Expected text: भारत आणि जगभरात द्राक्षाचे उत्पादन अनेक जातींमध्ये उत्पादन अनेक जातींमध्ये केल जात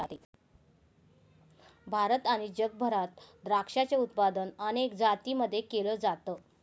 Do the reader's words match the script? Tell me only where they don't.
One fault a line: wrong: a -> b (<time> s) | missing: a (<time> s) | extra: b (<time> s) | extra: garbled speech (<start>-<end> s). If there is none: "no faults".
missing: उत्पादन अनेक जातींमध्ये (5.6 s)